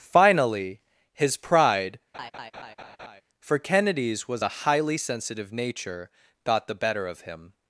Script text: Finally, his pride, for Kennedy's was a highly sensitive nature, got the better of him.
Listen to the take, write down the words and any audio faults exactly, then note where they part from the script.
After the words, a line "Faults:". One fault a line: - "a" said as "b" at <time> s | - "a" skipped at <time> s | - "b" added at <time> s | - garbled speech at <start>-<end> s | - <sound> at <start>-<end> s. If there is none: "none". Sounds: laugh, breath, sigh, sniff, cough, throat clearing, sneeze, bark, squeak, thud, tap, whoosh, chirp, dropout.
Finally, his pride, for Kennedy's was a highly sensitive nature, got the better of him.
Faults:
- laugh at 2.1-3.2 s